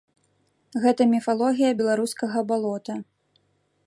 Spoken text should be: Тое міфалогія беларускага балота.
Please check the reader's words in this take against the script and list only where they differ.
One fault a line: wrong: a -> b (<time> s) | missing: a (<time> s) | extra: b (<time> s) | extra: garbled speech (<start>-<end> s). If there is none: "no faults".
wrong: Тое -> Гэта (0.8 s)